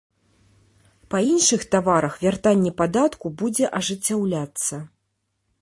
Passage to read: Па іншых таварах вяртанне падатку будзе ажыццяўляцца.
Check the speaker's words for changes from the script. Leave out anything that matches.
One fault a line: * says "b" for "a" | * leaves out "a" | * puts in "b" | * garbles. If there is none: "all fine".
all fine